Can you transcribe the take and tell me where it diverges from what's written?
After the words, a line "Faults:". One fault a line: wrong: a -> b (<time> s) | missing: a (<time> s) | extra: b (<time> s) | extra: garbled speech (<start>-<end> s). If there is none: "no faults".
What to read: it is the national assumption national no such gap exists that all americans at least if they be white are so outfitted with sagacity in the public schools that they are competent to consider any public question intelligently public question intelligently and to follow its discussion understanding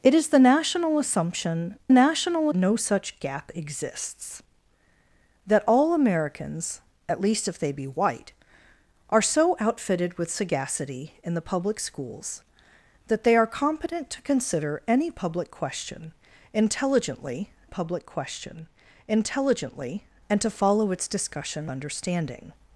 it is the national assumption national no such gap exists that all americans at least if they be white are so outfitted with sagacity in the public schools that they are competent to consider any public question intelligently public question intelligently and to follow its discussion understanding
Faults:
no faults